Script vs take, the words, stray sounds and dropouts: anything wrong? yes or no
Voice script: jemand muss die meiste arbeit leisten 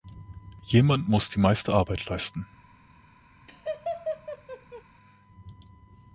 yes